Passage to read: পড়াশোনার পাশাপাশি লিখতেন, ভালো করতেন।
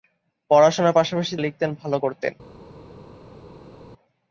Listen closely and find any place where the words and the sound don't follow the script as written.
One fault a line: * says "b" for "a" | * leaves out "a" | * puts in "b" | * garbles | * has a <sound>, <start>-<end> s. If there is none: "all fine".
all fine